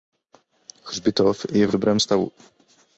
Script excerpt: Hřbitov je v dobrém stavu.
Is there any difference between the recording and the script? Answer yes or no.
no